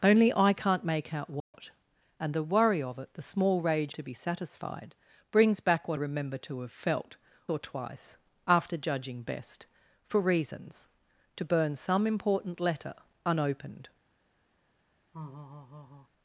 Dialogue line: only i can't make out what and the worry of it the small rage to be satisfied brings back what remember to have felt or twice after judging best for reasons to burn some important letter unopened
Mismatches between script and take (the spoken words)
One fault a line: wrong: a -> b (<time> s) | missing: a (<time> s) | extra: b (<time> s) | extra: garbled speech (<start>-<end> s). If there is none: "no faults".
no faults